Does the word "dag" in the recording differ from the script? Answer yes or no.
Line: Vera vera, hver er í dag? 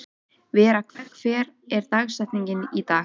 no